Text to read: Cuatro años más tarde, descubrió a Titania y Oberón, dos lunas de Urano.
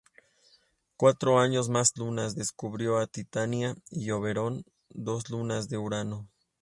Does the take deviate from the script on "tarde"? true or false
true